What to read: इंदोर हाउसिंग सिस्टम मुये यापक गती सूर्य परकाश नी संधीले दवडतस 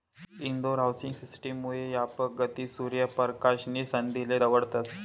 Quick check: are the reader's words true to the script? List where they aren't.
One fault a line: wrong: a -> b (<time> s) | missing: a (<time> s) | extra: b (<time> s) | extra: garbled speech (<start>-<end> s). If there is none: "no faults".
no faults